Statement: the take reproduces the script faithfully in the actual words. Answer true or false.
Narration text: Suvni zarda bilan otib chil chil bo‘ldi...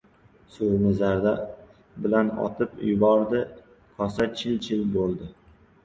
false